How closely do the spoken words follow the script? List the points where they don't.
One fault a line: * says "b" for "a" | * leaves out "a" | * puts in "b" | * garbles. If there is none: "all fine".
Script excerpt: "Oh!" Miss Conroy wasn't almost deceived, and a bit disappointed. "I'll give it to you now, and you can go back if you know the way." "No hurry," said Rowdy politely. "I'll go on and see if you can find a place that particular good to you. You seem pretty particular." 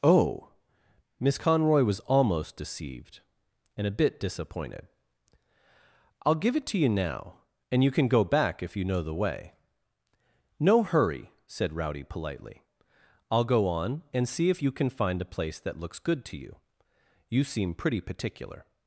* says "was" for "wasn't"
* says "looks" for "particular"